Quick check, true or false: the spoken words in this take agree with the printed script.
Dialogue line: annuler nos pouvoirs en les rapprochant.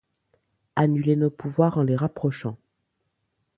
true